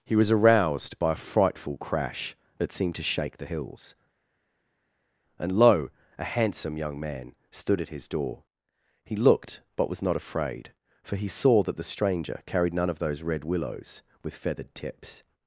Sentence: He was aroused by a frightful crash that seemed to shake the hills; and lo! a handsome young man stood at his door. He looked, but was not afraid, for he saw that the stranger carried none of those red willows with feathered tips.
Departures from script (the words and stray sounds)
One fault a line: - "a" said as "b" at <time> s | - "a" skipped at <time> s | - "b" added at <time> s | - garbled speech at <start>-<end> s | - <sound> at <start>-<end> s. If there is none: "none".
none